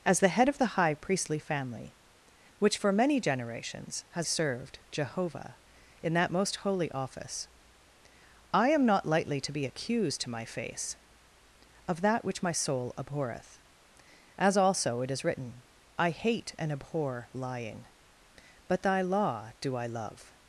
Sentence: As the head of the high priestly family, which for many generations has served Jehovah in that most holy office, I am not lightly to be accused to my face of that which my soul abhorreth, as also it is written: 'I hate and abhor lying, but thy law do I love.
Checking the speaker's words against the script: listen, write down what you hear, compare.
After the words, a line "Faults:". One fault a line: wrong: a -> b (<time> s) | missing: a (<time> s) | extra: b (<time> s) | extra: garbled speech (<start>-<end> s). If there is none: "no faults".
As the head of the high priestly family, which for many generations has served Jehovah in that most holy office, I am not lightly to be accused to my face of that which my soul abhorreth, as also it is written: 'I hate and abhor lying, but thy law do I love.
Faults:
no faults